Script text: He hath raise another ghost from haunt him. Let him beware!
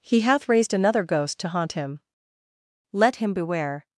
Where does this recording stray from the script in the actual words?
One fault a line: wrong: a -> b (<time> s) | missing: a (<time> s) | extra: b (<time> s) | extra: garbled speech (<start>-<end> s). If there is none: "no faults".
wrong: raise -> raised (0.5 s)
wrong: from -> to (1.4 s)